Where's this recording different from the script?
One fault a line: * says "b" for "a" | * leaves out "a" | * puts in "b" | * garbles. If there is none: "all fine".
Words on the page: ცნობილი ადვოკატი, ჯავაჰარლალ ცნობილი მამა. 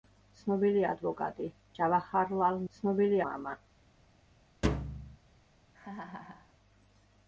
all fine